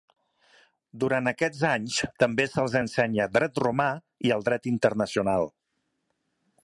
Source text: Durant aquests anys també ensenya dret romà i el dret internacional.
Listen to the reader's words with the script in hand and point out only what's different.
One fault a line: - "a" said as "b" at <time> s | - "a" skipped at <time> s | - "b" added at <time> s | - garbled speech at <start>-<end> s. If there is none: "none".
- "se'ls" added at 2.5 s